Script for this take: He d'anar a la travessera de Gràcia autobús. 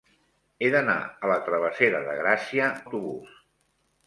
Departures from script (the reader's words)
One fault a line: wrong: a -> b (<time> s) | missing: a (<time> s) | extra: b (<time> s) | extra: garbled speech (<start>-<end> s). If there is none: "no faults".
no faults